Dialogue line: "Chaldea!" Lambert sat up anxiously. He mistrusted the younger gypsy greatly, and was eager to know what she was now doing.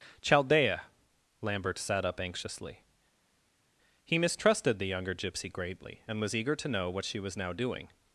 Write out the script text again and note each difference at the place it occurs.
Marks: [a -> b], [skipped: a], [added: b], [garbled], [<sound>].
"Chaldea!" Lambert sat up anxiously. He mistrusted the younger gypsy greatly, and was eager to know what she was now doing.